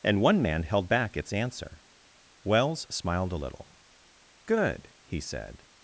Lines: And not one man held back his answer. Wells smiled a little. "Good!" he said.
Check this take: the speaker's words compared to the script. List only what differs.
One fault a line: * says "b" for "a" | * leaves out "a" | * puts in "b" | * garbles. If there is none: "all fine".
* leaves out "not"
* says "its" for "his"